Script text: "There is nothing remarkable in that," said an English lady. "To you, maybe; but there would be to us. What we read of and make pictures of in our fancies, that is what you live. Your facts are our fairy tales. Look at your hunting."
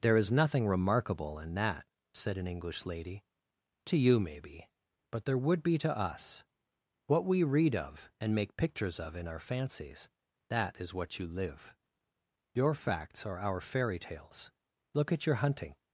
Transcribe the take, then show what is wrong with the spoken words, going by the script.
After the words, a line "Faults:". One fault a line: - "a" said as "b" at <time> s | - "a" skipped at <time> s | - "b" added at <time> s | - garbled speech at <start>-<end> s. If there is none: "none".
"There is nothing remarkable in that," said an English lady. "To you, maybe; but there would be to us. What we read of and make pictures of in our fancies, that is what you live. Your facts are our fairy tales. Look at your hunting."
Faults:
none